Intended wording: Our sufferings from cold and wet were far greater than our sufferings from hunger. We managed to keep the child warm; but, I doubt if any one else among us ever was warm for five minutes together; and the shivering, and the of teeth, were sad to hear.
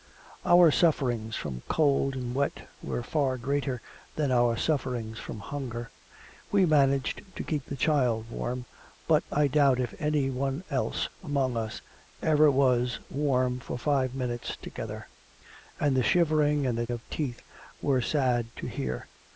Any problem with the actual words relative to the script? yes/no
no